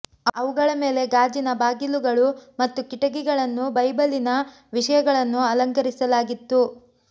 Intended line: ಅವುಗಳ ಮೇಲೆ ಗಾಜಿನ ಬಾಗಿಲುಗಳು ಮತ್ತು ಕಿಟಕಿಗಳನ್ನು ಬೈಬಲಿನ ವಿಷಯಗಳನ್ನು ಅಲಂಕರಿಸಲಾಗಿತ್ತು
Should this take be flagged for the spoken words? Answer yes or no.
no